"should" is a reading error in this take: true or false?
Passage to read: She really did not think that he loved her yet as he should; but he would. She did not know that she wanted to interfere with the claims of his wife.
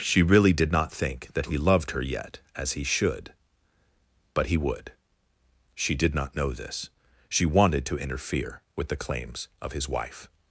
false